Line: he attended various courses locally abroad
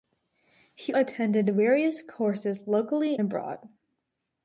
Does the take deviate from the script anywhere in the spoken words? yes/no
no